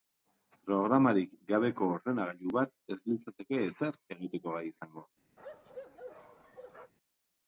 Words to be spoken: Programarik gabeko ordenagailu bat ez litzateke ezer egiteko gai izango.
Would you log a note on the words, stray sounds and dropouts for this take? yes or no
yes